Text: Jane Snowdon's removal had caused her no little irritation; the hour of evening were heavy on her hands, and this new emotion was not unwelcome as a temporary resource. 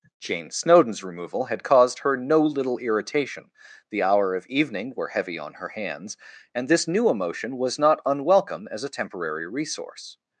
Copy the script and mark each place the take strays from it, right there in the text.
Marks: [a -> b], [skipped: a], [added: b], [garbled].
Jane Snowdon's removal had caused her no little irritation; the hour of evening were heavy on her hands, and this new emotion was not unwelcome as a temporary resource.